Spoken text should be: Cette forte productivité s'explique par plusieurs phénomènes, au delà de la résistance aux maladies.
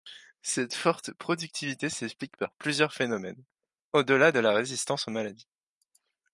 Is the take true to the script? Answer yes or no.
yes